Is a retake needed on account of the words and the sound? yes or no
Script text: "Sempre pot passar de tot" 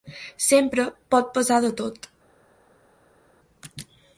no